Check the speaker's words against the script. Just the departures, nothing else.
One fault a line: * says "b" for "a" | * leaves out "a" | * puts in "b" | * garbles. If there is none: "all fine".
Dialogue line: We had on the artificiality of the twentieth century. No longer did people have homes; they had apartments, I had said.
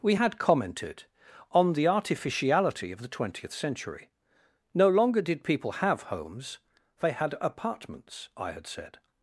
* puts in "commented"